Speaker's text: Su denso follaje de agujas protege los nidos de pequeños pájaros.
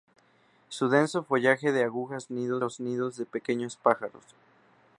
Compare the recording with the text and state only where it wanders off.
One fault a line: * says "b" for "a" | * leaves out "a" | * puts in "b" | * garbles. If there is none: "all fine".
* says "nidos" for "protege"